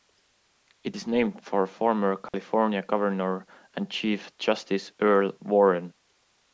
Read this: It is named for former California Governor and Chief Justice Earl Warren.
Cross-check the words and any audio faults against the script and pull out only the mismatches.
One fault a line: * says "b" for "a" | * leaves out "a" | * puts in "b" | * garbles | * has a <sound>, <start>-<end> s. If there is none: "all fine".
* has a dropout, 2.3-2.3 s